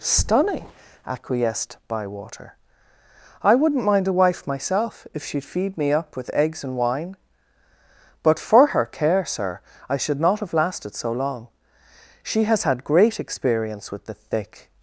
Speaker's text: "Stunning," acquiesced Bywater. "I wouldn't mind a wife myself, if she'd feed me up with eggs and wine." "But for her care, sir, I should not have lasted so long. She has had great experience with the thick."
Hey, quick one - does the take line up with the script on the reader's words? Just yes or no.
yes